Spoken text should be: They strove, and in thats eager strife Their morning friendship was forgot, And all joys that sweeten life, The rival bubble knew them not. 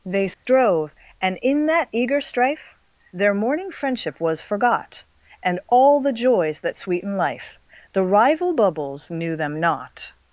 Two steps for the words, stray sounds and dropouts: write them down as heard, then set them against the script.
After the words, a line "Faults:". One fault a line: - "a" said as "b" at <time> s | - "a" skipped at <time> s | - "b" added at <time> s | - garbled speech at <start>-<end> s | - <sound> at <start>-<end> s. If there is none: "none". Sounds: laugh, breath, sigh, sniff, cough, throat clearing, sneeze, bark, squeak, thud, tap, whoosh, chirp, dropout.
They strove, and in that eager strife Their morning friendship was forgot, And all the joys that sweeten life, The rival bubbles knew them not.
Faults:
- dropout at 0.3-0.5 s
- "thats" said as "that" at 1.7 s
- "the" added at 6.0 s
- "bubble" said as "bubbles" at 8.5 s